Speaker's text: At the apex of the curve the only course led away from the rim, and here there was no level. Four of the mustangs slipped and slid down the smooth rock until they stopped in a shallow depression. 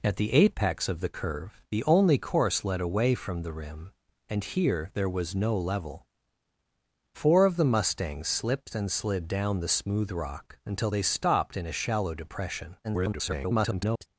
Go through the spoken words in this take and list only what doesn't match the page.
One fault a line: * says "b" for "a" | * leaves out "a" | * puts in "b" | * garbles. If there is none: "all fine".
* garbles